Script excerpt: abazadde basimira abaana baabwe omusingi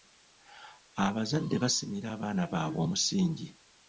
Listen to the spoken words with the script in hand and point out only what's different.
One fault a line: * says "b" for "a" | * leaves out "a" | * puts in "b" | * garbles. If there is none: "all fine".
all fine